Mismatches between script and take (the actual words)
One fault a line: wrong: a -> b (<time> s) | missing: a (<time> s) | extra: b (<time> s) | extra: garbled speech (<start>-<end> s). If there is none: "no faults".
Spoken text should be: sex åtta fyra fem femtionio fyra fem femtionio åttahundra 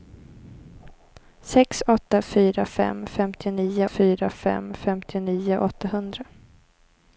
no faults